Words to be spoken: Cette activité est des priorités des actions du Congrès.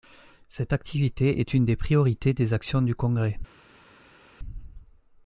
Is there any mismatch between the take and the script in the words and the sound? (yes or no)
yes